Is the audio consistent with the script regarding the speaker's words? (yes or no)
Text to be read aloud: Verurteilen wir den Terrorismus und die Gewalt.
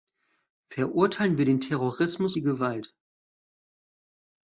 no